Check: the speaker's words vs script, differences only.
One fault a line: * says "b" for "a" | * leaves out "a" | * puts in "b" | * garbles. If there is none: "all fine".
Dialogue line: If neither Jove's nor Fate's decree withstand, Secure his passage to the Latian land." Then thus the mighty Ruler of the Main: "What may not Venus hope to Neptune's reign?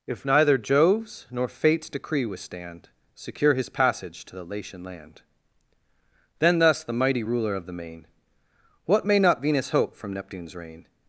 * says "from" for "to"